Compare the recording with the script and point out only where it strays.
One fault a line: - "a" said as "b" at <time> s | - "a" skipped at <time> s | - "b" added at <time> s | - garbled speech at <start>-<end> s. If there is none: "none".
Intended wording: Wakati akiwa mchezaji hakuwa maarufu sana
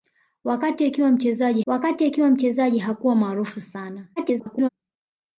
- "wakati akiwa mchezaji" added at 1.6 s
- garbled speech at 4.2-4.7 s